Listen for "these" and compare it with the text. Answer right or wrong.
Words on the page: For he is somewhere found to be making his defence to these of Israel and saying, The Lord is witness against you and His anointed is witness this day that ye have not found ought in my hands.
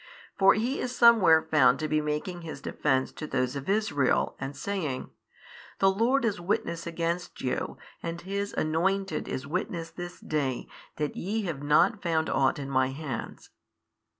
wrong